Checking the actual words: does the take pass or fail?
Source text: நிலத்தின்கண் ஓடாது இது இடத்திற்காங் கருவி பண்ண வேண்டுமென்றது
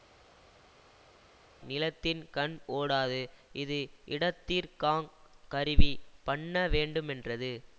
pass